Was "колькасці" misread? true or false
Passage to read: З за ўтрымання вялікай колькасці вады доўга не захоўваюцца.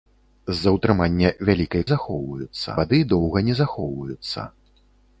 true